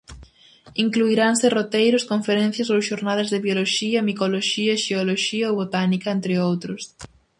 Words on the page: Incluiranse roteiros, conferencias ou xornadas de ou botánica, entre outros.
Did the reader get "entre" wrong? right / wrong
right